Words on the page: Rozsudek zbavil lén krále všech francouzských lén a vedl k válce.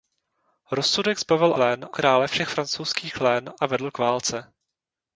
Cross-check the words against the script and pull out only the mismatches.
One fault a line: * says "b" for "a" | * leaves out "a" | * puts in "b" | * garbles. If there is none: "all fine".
all fine